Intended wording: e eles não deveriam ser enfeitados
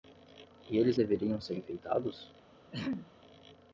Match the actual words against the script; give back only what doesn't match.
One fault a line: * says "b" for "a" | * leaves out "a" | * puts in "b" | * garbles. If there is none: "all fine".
* leaves out "não"